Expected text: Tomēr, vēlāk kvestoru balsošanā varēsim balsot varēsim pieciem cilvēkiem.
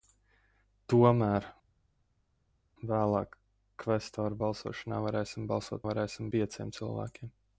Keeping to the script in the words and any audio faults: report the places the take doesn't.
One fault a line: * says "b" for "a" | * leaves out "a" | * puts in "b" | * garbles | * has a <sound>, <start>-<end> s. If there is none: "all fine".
all fine